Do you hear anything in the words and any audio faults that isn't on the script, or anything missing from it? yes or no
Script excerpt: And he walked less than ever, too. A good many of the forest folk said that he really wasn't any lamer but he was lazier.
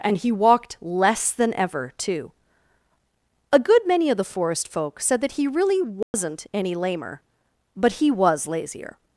yes